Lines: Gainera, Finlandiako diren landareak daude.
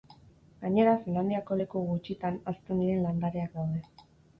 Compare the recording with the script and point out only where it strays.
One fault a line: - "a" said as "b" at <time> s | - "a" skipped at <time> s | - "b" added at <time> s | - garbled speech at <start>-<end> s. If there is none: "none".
- "leku gutxitan hazten" added at 1.6 s